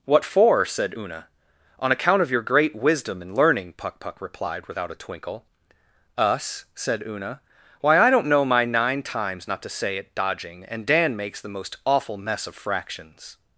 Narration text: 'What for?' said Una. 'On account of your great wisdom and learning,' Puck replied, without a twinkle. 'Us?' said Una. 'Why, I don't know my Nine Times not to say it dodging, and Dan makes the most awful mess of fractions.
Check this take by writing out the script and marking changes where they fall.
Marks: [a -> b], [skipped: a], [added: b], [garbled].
'What for?' said Una. 'On account of your great wisdom and learning,' Puck [added: Puck] replied, without a twinkle. 'Us?' said Una. 'Why, I don't know my Nine Times not to say it dodging, and Dan makes the most awful mess of fractions.